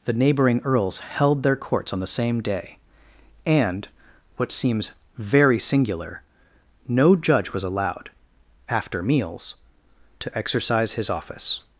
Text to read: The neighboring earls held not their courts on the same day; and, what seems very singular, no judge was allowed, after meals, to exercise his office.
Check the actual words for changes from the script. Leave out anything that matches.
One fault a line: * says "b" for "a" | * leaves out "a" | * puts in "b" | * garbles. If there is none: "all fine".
* leaves out "not"